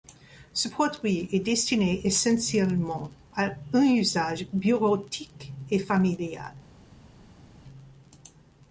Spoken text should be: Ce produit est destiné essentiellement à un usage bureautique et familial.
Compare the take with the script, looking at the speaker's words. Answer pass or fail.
pass